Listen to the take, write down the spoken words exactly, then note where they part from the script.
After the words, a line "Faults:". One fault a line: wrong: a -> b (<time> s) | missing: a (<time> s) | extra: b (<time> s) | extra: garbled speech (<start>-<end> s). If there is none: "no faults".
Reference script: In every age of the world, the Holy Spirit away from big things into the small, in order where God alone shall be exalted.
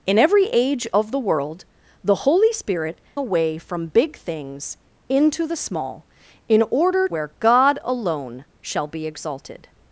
In every age of the world, the Holy Spirit away from big things into the small, in order where God alone shall be exalted.
Faults:
no faults